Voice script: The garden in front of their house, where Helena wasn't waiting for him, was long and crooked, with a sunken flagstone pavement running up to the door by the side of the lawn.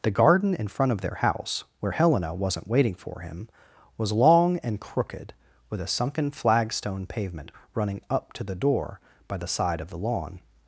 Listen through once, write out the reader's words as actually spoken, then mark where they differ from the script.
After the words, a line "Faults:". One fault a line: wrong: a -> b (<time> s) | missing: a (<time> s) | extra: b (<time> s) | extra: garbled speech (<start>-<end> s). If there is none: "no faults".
The garden in front of their house, where Helena wasn't waiting for him, was long and crooked, with a sunken flagstone pavement running up to the door by the side of the lawn.
Faults:
no faults